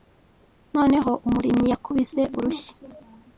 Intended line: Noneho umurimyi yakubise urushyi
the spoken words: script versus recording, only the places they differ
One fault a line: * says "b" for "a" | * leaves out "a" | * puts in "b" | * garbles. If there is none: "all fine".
all fine